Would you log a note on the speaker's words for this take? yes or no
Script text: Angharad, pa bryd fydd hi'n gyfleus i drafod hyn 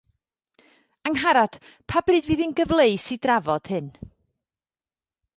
no